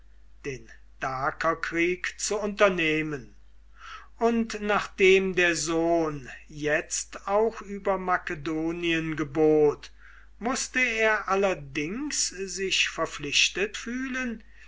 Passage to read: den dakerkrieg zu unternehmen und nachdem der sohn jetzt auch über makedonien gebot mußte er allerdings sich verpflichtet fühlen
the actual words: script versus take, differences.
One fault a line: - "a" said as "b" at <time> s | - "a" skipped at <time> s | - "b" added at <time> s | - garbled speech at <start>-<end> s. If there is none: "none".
none